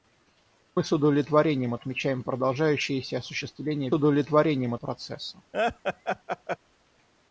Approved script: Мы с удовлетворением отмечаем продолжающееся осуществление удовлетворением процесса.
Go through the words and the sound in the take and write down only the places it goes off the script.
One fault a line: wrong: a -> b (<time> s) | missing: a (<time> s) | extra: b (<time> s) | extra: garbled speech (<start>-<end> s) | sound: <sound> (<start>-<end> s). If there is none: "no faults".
sound: laugh (5.5-6.6 s)